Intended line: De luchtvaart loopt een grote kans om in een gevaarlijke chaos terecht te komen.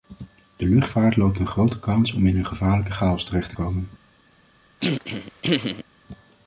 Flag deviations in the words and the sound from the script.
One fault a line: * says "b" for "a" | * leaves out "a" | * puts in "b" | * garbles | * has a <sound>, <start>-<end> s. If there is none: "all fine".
* has a throat clearing, 4.8-5.8 s